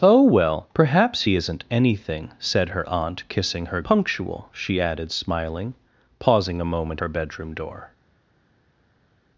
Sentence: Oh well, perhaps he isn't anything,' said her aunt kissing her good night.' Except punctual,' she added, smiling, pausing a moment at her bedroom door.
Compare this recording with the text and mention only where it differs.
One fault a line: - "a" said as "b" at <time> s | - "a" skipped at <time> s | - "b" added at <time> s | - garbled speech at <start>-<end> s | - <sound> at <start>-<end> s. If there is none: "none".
- "good night Except" skipped at 3.8 s
- "at" skipped at 7.0 s